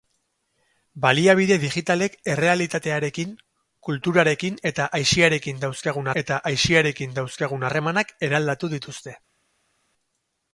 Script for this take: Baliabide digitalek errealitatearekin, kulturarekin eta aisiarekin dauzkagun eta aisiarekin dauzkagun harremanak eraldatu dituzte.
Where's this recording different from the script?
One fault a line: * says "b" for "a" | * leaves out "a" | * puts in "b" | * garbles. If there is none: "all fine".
all fine